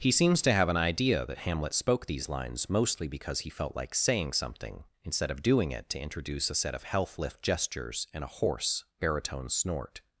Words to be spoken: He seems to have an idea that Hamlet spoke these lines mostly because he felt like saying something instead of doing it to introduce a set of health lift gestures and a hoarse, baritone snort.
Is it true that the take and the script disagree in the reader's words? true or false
false